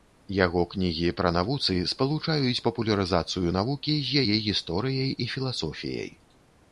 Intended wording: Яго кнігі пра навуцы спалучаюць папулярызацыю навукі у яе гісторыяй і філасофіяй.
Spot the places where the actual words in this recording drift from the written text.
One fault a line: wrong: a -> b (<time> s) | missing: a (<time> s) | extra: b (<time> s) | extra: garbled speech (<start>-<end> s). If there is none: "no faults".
wrong: у -> з (4.1 s)